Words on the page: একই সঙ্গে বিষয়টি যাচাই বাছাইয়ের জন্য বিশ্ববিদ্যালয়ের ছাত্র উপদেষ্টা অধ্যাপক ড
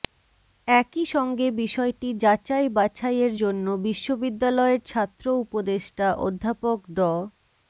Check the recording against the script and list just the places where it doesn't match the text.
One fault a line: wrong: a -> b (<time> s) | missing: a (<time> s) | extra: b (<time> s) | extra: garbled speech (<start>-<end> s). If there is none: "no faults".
no faults